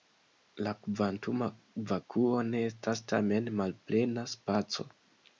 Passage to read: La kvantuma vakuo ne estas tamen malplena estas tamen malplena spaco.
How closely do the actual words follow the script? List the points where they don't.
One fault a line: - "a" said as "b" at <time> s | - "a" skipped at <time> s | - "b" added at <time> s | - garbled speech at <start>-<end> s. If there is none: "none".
- "estas tamen malplena" skipped at 4.2 s